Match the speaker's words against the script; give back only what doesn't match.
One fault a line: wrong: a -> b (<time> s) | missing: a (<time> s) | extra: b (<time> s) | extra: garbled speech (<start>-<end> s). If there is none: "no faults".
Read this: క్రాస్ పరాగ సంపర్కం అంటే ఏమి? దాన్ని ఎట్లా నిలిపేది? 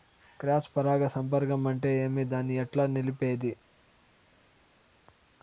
no faults